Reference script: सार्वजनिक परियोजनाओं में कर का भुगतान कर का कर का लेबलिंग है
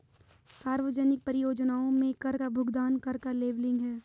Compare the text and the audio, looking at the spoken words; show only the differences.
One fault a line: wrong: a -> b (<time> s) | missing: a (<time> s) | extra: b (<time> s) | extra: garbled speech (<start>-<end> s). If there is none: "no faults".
missing: कर का (3.3 s)